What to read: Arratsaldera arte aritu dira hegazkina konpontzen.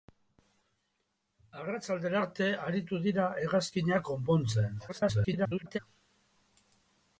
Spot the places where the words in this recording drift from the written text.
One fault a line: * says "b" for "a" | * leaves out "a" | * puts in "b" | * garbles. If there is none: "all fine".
* garbles